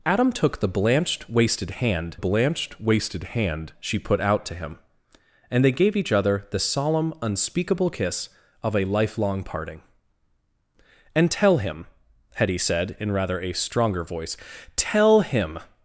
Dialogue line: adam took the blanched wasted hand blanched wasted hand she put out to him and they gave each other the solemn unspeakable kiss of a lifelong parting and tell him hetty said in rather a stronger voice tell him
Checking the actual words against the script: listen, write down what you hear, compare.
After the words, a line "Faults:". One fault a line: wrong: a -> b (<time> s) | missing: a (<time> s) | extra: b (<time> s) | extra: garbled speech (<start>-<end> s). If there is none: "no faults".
adam took the blanched wasted hand blanched wasted hand she put out to him and they gave each other the solemn unspeakable kiss of a lifelong parting and tell him hetty said in rather a stronger voice tell him
Faults:
no faults